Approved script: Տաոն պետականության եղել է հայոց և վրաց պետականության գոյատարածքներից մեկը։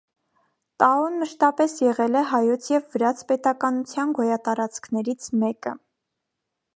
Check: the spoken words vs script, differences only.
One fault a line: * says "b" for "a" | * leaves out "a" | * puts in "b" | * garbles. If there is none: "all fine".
* says "մշտապես" for "պետականության"